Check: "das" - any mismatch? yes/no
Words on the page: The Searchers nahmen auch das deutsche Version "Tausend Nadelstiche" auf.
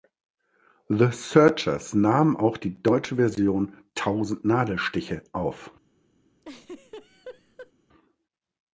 yes